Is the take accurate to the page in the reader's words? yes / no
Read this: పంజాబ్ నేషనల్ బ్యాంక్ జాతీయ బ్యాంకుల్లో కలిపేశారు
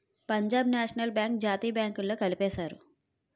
yes